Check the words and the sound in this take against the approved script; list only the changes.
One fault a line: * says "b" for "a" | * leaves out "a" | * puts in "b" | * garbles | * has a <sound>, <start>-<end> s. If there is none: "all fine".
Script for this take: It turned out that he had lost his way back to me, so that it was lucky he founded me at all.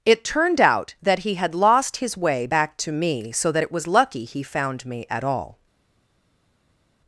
* says "found" for "founded"